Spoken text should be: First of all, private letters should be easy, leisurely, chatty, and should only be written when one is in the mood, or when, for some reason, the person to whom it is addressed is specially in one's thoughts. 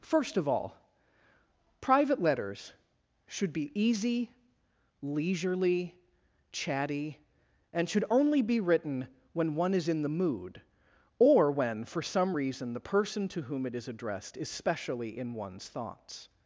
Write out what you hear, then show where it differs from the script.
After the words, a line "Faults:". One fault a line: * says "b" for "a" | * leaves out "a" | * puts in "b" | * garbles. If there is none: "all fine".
First of all, private letters should be easy, leisurely, chatty, and should only be written when one is in the mood, or when, for some reason, the person to whom it is addressed is specially in one's thoughts.
Faults:
all fine